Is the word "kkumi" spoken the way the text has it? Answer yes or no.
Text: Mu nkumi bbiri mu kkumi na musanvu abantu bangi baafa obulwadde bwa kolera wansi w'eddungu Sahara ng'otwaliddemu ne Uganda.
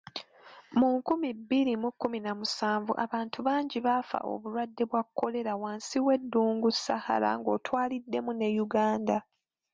yes